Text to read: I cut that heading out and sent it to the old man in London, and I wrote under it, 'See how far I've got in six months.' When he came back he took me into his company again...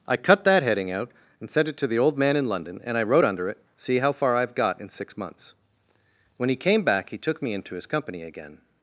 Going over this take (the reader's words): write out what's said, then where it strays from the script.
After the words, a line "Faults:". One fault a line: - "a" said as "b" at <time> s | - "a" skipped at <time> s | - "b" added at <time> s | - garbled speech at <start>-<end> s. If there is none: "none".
I cut that heading out and sent it to the old man in London, and I wrote under it, 'See how far I've got in six months.' When he came back he took me into his company again...
Faults:
none